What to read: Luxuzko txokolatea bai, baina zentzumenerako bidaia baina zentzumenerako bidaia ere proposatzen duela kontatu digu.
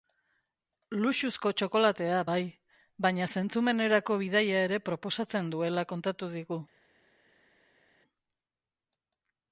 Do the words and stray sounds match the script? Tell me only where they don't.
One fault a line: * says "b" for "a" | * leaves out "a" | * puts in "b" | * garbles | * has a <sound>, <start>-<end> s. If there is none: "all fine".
* leaves out "baina zentzumenerako bidaia"